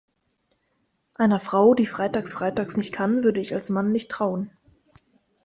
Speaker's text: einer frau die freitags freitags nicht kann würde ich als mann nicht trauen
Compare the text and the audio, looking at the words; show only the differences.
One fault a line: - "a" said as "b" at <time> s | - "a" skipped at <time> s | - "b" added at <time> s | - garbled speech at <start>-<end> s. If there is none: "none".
none